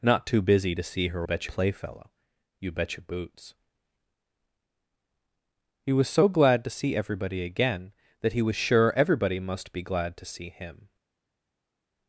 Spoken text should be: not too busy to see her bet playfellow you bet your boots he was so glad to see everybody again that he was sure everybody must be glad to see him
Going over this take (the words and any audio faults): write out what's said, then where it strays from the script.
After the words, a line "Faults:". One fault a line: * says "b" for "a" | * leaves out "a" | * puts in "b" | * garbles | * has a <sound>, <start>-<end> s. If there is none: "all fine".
not too busy to see her bet playfellow you bet your boots he was so glad to see everybody again that he was sure everybody must be glad to see him
Faults:
all fine